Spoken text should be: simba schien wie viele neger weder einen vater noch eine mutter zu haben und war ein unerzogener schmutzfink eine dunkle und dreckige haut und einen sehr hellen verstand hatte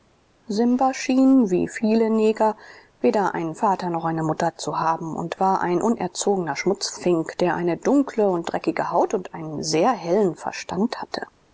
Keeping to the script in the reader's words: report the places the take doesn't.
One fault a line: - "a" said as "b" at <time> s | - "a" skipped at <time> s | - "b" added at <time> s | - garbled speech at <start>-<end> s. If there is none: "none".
- "der" added at 7.4 s